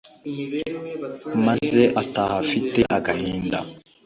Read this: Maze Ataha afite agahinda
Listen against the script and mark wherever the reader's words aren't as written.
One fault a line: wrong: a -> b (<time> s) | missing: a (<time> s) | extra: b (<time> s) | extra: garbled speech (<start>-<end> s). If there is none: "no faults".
no faults